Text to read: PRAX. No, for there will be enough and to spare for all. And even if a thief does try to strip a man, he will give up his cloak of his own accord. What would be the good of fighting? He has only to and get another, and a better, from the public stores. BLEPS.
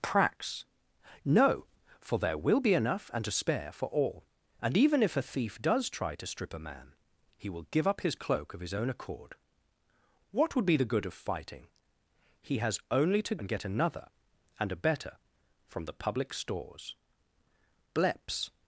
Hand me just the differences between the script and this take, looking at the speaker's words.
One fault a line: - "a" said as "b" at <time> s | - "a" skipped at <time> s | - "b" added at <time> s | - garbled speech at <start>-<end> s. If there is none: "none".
none